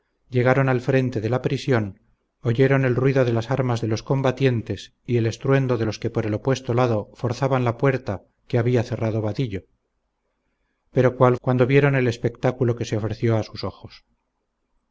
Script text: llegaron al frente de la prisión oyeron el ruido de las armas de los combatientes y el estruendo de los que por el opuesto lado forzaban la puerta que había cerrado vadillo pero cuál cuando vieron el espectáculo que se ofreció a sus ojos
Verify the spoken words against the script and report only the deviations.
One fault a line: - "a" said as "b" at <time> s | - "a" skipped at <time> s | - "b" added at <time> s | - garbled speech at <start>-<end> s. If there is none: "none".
none